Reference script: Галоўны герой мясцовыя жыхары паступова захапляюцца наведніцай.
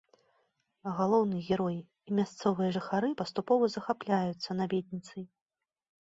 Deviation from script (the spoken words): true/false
true